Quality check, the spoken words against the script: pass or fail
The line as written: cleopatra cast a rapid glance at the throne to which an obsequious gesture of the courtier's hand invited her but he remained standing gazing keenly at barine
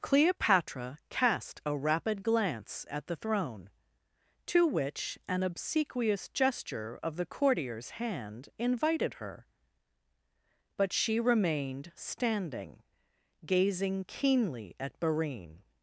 fail